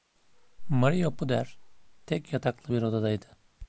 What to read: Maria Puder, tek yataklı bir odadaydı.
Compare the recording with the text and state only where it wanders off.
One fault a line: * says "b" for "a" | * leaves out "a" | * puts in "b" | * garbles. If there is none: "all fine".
all fine